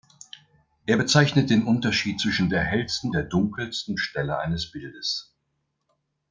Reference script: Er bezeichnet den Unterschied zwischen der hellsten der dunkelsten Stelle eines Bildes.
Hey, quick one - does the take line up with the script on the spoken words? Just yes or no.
yes